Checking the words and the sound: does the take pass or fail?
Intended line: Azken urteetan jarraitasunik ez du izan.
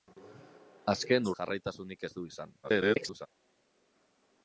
fail